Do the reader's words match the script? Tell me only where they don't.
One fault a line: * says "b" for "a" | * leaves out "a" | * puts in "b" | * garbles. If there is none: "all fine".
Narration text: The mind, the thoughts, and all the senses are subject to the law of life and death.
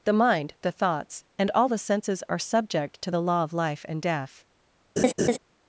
all fine